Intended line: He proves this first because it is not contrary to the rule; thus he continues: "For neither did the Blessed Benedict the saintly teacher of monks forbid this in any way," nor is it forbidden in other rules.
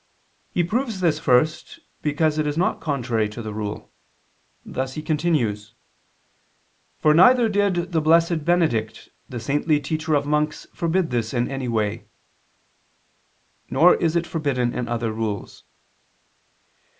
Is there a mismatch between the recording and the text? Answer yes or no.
no